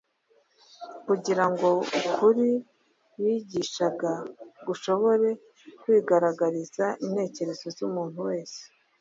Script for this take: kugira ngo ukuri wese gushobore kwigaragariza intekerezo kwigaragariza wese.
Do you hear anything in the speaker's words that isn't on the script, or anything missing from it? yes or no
yes